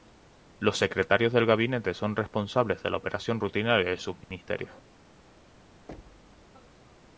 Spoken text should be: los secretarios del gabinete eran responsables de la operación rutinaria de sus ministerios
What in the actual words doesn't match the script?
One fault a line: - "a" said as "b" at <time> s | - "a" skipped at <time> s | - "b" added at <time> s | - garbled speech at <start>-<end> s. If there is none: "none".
- "eran" said as "son" at 1.9 s